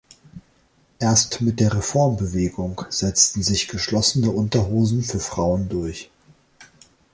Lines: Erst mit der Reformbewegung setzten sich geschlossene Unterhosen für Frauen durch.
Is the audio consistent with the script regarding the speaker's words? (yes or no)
yes